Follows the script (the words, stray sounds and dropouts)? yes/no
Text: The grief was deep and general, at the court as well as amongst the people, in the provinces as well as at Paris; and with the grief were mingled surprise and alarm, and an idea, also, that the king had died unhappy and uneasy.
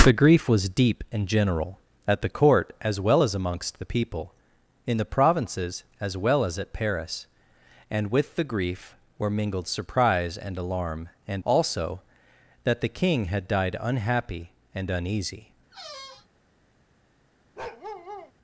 no